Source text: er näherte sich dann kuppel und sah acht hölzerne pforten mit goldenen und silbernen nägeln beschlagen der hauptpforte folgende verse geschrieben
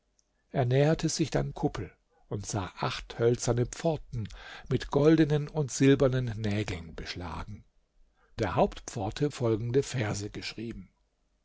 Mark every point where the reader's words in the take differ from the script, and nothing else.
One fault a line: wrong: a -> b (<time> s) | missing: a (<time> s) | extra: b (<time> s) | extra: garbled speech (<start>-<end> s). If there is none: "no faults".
no faults